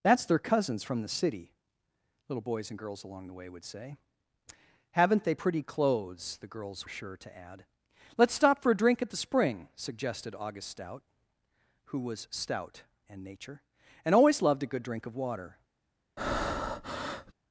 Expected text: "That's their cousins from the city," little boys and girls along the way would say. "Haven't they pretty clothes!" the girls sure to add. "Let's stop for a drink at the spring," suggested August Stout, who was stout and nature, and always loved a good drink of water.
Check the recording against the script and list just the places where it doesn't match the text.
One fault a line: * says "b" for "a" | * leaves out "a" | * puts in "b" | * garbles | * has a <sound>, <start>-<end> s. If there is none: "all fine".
* has a breath, 16.2-17.3 s